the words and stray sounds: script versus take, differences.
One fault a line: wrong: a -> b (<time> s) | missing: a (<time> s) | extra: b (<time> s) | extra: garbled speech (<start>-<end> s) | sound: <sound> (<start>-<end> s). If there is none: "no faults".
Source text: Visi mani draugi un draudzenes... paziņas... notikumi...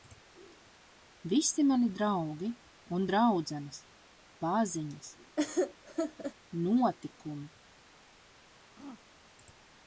sound: laugh (5.4-6.3 s)
sound: throat clearing (8.8-9.0 s)